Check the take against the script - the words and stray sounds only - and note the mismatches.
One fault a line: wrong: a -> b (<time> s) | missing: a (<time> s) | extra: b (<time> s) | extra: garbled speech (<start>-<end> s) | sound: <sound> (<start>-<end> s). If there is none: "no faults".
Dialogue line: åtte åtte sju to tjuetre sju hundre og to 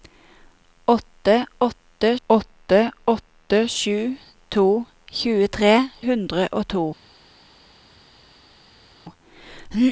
extra: åtte åtte (2.3 s)
missing: sju (5.7 s)